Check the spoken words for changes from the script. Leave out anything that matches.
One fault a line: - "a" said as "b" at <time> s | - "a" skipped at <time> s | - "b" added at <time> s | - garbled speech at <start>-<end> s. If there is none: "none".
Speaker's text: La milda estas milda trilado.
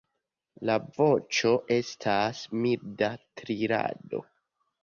- "milda" said as "voĉo" at 1.0 s